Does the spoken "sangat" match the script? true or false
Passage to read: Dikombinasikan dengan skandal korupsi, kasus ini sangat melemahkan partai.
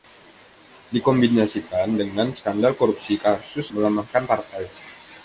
false